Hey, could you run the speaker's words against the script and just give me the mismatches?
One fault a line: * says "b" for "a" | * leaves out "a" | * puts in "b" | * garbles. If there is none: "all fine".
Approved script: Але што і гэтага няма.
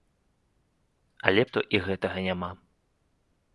all fine